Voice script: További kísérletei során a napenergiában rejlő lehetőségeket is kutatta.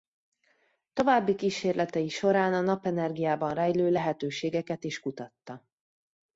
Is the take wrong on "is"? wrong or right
right